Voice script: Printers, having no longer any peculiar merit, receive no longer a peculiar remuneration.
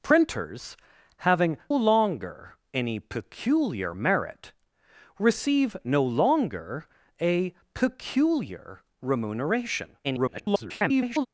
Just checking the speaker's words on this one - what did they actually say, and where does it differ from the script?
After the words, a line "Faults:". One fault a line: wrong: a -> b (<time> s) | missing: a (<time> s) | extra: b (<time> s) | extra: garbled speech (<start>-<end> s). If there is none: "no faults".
Printers, having longer any peculiar merit, receive no longer a peculiar remuneration. [garbled]
Faults:
missing: no (1.6 s)
extra: garbled speech (10.0-11.3 s)